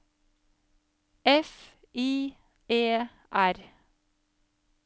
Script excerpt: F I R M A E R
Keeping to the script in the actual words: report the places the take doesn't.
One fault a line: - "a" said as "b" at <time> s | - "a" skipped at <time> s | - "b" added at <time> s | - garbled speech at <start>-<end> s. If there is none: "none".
- "R M A" skipped at 2.4 s